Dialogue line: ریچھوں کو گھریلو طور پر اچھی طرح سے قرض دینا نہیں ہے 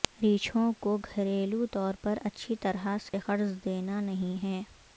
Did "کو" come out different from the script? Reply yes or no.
no